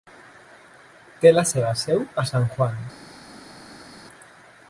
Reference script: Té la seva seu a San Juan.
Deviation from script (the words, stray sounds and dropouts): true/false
false